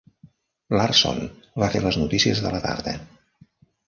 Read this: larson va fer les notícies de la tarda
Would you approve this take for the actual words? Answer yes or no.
yes